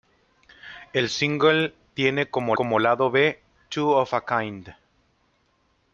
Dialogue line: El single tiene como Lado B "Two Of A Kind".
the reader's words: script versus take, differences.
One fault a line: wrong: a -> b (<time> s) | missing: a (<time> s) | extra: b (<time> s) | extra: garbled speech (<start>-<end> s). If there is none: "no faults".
extra: como (2.5 s)